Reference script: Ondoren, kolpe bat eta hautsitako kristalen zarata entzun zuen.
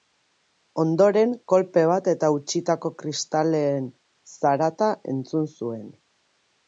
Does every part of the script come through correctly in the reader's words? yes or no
yes